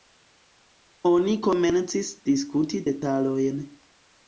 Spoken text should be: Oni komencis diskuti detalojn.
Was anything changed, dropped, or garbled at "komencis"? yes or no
no